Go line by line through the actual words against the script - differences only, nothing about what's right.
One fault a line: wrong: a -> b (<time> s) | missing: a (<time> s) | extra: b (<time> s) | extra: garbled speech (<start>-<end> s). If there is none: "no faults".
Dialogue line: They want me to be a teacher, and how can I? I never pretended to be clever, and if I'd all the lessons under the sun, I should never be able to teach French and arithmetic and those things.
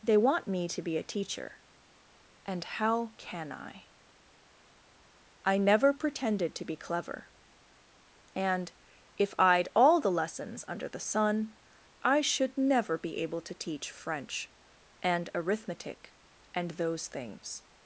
no faults